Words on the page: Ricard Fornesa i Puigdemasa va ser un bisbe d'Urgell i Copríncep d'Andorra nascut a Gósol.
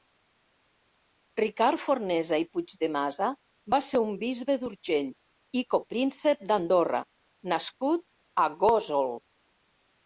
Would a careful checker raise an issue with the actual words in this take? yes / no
no